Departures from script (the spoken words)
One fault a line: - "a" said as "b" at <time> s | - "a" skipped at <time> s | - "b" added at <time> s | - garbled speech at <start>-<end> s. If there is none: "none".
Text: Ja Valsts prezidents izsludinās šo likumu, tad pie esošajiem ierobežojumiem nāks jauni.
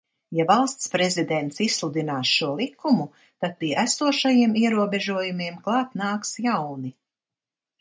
- "klāt" added at 5.7 s